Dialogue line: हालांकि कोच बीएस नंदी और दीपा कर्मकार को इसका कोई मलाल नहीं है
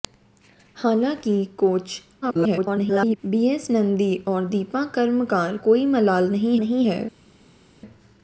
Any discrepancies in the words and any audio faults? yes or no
yes